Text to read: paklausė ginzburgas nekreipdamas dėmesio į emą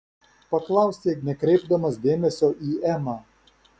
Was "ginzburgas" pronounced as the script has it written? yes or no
no